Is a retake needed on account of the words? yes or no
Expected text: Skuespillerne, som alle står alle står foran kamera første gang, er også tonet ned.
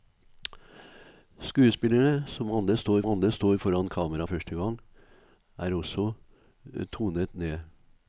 no